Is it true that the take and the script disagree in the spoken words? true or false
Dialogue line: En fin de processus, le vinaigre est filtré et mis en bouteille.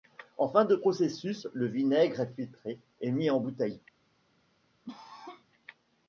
false